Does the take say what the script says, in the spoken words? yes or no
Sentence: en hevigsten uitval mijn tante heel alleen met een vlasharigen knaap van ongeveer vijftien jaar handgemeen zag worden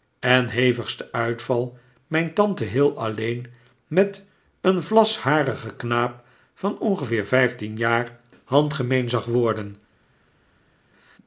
yes